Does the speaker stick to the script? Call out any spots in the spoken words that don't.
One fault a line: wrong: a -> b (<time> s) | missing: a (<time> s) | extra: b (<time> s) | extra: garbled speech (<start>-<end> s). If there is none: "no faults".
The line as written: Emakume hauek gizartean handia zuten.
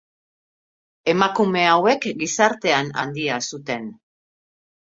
no faults